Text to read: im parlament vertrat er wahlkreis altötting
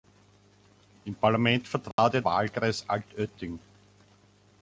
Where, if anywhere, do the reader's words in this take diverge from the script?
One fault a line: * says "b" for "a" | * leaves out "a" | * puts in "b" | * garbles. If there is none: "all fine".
all fine